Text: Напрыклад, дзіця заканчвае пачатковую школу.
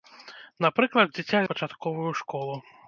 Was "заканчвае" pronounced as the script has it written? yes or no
no